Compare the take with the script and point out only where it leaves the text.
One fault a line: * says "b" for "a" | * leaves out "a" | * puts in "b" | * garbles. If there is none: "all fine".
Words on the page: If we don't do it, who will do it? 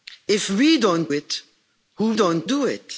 * leaves out "do"
* says "don't" for "will"